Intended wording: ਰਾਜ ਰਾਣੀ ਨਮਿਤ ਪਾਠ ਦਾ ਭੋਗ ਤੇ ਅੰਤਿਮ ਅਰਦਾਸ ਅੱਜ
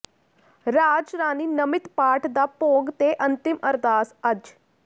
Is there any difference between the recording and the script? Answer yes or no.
no